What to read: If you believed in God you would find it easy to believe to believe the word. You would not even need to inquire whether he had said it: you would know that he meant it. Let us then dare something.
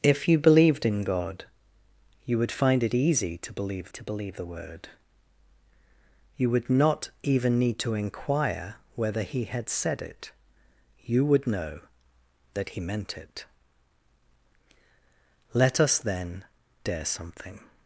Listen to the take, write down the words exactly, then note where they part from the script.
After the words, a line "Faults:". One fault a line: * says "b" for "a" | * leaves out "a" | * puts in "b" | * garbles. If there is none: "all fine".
If you believed in God you would find it easy to believe to believe the word. You would not even need to inquire whether he had said it: you would know that he meant it. Let us then dare something.
Faults:
all fine